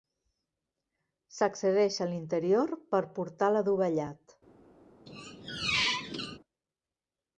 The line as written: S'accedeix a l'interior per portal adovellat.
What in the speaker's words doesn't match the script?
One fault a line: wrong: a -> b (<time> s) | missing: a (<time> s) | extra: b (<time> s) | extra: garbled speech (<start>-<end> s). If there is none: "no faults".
no faults